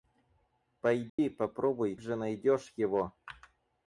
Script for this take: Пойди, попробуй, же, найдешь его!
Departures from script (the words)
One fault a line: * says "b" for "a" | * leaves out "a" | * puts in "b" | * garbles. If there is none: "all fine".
all fine